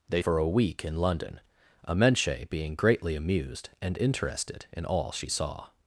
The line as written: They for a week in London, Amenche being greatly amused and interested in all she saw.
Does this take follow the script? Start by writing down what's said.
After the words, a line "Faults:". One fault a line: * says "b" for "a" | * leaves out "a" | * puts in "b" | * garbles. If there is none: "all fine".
They for a week in London, Amenche being greatly amused and interested in all she saw.
Faults:
all fine